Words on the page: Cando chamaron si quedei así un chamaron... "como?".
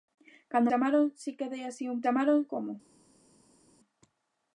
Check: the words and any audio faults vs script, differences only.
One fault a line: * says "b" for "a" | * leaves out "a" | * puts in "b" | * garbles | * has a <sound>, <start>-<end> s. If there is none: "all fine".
all fine